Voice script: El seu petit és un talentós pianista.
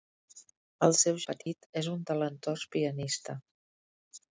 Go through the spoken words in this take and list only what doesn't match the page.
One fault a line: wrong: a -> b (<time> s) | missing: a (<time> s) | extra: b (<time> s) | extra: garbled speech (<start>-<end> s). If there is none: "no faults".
no faults